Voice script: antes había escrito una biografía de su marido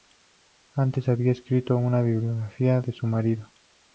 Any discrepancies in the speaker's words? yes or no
no